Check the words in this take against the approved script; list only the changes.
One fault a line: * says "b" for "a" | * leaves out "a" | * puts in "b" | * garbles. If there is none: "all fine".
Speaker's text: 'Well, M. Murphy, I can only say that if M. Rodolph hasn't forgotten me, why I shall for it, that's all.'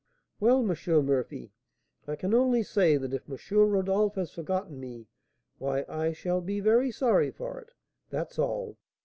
* says "has" for "hasn't"
* puts in "be very sorry"